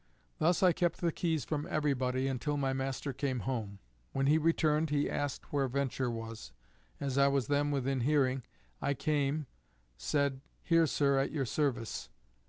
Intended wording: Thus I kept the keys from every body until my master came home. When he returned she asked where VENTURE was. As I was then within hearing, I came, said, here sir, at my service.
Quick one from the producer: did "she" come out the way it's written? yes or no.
no